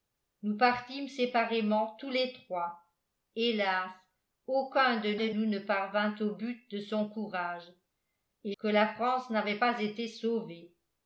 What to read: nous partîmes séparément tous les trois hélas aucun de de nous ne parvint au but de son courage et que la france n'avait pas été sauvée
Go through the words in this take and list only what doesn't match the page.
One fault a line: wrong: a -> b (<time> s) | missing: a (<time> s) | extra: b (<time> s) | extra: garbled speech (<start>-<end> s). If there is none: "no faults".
no faults